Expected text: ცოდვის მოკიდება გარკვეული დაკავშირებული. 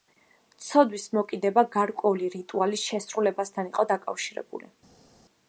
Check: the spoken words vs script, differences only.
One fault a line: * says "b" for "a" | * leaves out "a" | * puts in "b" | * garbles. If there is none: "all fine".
* puts in "რიტუალის შესრულებასთან იყო"